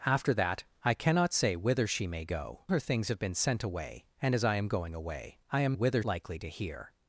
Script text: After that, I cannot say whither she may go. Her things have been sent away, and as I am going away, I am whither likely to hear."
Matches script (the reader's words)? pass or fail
pass